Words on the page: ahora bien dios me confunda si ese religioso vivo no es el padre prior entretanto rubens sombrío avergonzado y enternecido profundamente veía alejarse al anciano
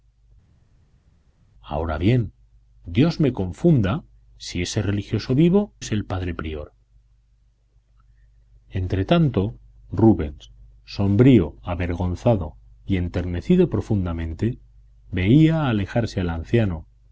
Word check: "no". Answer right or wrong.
wrong